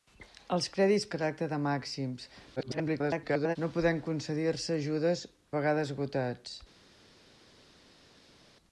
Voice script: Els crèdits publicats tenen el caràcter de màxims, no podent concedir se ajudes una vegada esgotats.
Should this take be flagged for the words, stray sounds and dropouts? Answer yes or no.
yes